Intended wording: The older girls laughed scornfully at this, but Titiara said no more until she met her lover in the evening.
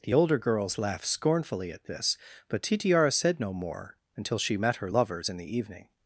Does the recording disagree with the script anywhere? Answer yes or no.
yes